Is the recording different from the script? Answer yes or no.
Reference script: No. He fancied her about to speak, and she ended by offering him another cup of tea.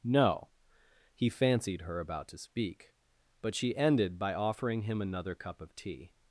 yes